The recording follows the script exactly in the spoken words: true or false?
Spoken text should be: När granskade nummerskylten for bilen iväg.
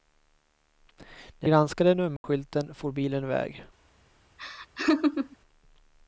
true